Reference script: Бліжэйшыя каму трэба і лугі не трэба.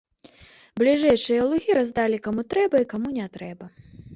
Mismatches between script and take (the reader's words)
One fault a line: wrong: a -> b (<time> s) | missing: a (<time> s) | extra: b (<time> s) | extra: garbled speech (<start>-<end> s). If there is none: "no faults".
extra: лугі раздалі (1.5 s)
wrong: лугі -> каму (2.9 s)